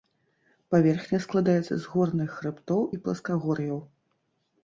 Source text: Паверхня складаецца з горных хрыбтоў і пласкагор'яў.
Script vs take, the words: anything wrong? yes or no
no